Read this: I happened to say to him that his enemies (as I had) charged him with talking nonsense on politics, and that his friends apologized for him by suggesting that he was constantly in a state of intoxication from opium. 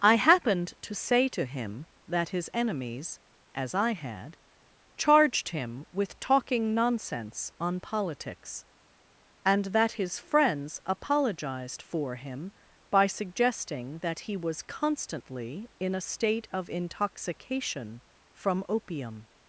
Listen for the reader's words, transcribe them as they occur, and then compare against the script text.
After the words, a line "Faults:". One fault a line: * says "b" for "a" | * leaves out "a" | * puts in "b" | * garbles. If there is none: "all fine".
I happened to say to him that his enemies (as I had) charged him with talking nonsense on politics, and that his friends apologized for him by suggesting that he was constantly in a state of intoxication from opium.
Faults:
all fine